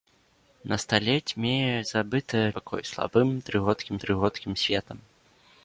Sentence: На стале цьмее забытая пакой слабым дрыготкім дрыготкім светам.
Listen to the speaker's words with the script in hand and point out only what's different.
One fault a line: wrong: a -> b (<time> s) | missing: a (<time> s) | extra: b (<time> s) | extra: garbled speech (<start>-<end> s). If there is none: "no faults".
no faults